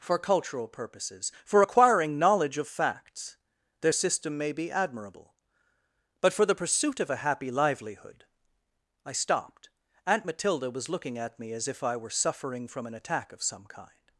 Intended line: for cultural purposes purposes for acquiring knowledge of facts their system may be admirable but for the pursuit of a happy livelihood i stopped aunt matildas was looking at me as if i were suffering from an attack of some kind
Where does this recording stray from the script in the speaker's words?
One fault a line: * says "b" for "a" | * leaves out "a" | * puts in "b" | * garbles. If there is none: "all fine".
* leaves out "purposes"
* says "matilda" for "matildas"